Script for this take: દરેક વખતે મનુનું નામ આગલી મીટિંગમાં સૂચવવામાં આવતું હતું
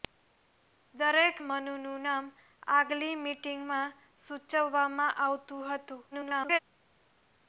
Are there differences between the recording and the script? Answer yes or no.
yes